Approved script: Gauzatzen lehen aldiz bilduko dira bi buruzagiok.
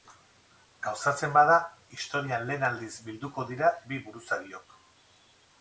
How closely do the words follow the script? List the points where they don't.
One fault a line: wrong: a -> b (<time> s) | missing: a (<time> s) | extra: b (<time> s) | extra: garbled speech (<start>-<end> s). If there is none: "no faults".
extra: bada historian (1.4 s)